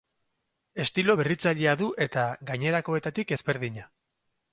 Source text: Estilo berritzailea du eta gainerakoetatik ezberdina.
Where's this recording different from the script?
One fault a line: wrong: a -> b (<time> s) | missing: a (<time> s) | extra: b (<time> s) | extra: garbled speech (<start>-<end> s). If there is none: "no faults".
no faults